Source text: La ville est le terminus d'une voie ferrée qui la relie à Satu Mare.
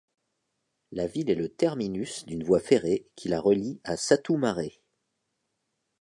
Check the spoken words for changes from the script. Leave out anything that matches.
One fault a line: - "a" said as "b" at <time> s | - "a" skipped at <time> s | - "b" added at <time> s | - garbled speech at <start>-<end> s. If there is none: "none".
none